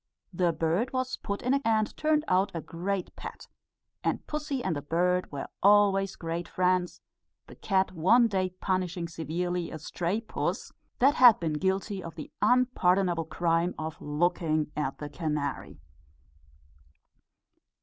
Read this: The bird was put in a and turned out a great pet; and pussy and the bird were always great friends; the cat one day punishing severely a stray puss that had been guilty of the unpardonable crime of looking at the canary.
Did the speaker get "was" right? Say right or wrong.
right